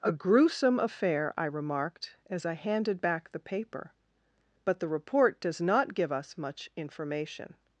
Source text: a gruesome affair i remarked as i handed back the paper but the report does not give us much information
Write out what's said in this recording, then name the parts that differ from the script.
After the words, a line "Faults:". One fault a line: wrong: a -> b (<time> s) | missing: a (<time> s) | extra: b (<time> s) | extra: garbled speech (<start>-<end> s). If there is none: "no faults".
a gruesome affair i remarked as i handed back the paper but the report does not give us much information
Faults:
no faults